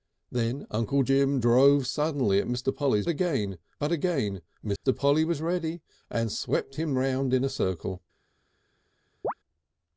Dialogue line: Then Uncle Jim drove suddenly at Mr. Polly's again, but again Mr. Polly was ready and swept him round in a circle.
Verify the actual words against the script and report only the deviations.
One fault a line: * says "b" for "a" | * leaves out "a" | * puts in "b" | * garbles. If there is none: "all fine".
all fine